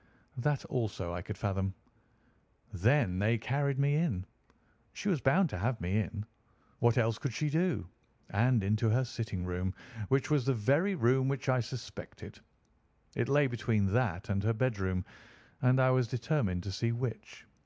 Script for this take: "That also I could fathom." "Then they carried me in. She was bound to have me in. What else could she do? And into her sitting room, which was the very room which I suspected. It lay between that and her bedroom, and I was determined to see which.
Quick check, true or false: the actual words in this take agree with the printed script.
true